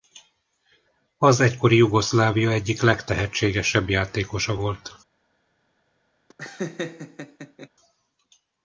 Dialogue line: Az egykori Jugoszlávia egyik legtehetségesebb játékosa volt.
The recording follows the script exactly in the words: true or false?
true